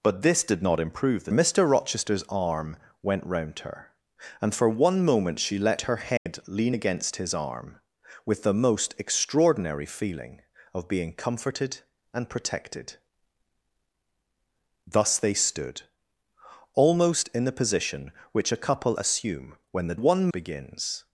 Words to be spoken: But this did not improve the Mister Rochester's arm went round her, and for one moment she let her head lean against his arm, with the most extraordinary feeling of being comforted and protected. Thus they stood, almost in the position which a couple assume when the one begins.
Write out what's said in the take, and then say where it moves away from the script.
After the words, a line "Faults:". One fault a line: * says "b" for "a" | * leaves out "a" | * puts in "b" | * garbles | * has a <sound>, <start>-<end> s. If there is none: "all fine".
But this did not improve the Mister Rochester's arm went round her, and for one moment she let her head lean against his arm, with the most extraordinary feeling of being comforted and protected. Thus they stood, almost in the position which a couple assume when the one begins.
Faults:
* has a dropout, 6.2-6.3 s